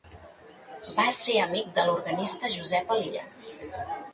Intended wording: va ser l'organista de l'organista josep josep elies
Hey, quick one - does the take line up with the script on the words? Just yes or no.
no